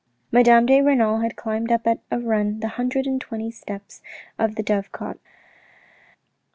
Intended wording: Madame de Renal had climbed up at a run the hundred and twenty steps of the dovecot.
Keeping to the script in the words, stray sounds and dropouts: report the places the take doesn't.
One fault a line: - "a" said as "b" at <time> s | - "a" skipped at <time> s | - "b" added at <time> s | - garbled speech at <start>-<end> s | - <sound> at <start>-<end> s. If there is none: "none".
none